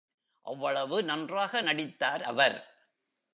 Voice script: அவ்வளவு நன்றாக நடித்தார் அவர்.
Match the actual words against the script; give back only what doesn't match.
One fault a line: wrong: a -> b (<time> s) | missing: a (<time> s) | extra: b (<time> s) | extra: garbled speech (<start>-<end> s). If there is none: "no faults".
no faults